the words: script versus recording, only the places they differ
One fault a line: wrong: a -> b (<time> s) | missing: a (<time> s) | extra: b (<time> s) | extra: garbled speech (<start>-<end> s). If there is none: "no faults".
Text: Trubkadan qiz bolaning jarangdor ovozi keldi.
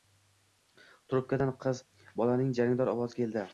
no faults